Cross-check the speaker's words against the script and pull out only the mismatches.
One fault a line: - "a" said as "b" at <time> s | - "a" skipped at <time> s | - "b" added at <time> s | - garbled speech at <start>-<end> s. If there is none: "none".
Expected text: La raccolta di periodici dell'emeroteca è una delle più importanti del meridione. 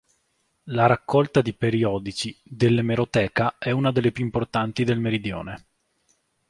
none